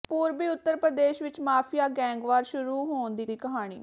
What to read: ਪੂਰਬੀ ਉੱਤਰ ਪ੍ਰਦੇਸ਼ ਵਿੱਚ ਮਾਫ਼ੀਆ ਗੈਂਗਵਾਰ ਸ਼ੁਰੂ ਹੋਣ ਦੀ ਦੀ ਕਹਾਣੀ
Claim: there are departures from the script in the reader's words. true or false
false